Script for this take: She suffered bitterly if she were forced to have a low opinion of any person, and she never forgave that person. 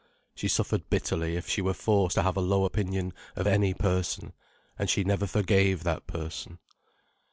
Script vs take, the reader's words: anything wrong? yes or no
no